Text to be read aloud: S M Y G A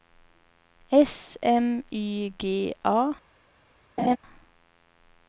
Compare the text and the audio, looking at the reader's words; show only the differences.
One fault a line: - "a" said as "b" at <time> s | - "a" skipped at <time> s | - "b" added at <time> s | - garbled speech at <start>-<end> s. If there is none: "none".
none